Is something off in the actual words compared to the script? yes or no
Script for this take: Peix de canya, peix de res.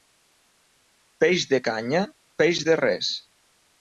no